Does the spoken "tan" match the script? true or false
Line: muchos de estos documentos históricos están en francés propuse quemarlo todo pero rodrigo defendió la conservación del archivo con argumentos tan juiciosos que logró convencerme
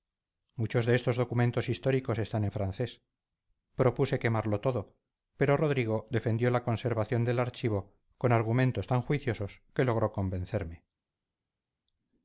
true